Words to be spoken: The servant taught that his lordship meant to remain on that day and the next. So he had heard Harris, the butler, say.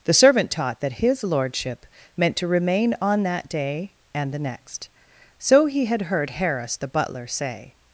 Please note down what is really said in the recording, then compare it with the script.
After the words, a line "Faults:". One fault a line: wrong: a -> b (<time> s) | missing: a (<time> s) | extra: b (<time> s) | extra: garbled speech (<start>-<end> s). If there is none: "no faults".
The servant taught that his lordship meant to remain on that day and the next. So he had heard Harris, the butler, say.
Faults:
no faults